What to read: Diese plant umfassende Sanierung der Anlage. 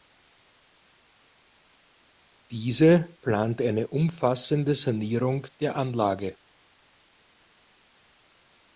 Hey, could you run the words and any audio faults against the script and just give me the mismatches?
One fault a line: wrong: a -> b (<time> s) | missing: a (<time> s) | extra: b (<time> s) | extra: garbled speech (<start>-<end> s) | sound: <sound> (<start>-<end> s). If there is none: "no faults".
extra: eine (3.6 s)